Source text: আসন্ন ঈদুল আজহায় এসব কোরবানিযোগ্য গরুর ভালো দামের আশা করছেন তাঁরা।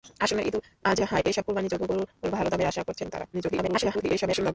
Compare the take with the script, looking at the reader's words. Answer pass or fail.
fail